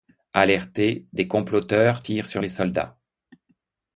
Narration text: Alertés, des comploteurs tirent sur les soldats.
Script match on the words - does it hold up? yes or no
yes